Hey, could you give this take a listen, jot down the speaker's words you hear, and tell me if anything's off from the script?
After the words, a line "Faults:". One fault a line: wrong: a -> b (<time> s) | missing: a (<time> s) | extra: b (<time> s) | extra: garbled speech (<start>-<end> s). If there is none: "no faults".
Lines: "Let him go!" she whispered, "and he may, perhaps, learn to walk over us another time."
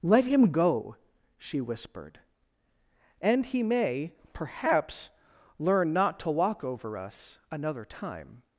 "Let him go!" she whispered, "and he may, perhaps, learn not to walk over us another time."
Faults:
extra: not (5.9 s)